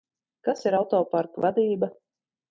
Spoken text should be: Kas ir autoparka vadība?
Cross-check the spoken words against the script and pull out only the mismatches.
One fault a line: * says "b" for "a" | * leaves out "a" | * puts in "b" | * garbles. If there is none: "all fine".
all fine